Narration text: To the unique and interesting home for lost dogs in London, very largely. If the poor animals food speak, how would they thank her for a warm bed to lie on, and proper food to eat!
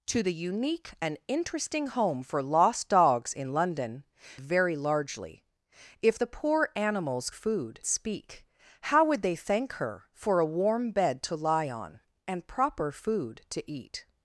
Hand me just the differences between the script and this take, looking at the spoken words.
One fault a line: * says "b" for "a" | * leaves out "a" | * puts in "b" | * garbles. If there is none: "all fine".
all fine